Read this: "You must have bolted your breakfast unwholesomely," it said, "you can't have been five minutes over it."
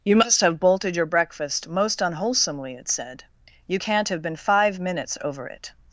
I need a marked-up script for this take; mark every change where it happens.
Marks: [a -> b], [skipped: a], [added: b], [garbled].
"You must have bolted your breakfast [added: most] unwholesomely," it said, "you can't have been five minutes over it."